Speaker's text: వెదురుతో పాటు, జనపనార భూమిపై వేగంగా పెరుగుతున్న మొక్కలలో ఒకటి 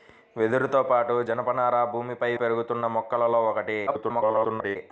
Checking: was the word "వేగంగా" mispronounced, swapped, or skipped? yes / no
yes